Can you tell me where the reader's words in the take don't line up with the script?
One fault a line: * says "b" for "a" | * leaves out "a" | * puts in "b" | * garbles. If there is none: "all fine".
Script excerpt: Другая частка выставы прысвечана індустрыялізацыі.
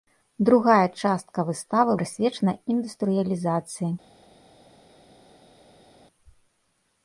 all fine